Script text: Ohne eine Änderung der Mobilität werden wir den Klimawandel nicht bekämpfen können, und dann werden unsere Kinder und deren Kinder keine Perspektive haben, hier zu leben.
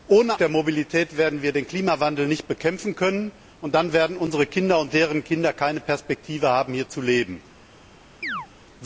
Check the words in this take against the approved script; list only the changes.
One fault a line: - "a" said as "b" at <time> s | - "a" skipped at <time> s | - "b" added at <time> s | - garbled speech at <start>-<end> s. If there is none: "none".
- "eine Änderung" skipped at 0.4 s